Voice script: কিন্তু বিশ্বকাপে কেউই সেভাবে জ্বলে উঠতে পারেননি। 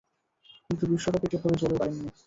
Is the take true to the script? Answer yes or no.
no